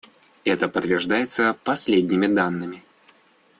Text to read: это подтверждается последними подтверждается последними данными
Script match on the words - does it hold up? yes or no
no